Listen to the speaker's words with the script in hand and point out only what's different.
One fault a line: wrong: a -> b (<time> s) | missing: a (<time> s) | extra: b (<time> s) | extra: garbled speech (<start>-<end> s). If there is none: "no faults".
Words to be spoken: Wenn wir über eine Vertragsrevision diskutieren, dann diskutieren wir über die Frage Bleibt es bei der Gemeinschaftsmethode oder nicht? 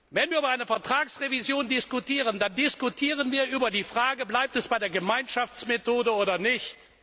no faults